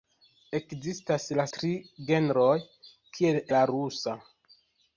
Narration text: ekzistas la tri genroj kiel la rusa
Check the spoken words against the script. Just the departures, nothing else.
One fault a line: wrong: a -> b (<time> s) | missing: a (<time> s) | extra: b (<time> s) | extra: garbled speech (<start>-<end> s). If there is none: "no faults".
no faults